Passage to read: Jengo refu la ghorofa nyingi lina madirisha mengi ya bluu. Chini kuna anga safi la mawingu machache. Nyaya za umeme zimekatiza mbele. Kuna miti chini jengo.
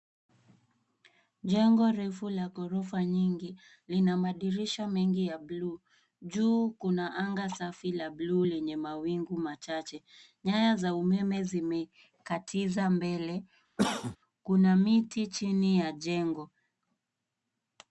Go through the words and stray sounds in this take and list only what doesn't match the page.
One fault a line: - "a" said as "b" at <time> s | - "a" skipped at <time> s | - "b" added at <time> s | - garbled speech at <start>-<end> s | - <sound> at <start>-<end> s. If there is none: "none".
- "Chini" said as "Juu" at 6.2 s
- "bluu lenye" added at 8.1 s
- cough at 13.8-14.2 s
- "ya" added at 15.8 s